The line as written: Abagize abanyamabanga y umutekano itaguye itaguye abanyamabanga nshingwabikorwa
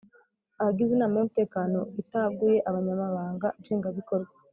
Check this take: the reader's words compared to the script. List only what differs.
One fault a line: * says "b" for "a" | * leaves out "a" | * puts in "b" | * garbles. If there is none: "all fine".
* says "inama" for "abanyamabanga"
* leaves out "itaguye"